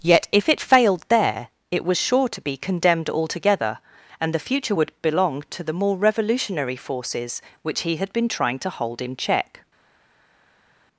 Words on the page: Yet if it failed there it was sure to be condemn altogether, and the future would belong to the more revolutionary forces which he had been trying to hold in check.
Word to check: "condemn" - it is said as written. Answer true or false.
false